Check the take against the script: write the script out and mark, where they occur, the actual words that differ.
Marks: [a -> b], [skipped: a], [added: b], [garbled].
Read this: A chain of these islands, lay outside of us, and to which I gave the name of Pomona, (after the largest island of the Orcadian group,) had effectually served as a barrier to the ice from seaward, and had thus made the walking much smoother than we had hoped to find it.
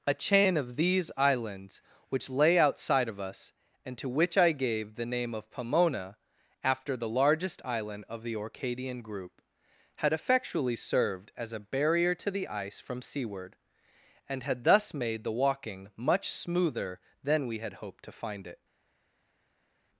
A chain of these islands, [added: which] lay outside of us, and to which I gave the name of Pomona, (after the largest island of the Orcadian group,) had effectually served as a barrier to the ice from seaward, and had thus made the walking much smoother than we had hoped to find it.